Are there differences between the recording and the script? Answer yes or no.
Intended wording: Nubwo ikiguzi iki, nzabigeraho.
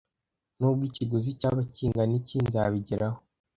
yes